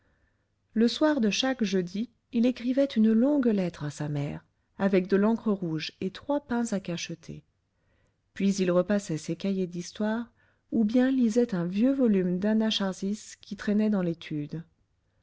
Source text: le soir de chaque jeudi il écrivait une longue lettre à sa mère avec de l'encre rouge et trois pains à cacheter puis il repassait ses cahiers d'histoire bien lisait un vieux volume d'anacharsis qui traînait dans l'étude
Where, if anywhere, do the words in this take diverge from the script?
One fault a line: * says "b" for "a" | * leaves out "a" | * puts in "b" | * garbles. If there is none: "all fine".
* puts in "ou"